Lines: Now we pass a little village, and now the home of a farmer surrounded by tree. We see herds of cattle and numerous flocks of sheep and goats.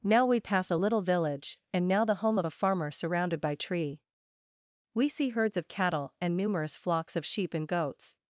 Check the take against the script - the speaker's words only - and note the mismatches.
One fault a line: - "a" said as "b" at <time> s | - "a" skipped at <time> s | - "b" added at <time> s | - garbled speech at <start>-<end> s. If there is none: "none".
none